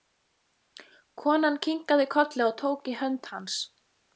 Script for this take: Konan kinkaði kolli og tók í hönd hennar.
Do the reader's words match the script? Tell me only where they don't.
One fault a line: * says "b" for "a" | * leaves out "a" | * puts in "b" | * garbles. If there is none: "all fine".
* says "hans" for "hennar"